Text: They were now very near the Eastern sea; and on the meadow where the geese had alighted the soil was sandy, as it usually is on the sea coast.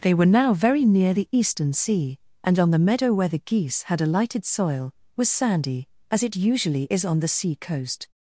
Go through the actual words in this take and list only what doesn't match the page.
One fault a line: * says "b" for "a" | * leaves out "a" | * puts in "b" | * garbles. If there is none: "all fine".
* leaves out "the"